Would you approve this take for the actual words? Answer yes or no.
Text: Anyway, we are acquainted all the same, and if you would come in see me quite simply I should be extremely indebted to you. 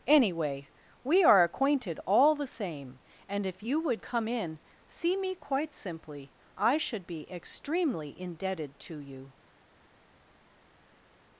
yes